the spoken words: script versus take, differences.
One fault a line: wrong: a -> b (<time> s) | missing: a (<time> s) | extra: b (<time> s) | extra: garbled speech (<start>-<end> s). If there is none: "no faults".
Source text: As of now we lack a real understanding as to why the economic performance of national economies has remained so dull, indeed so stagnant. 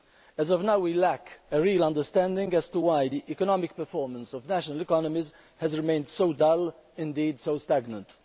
no faults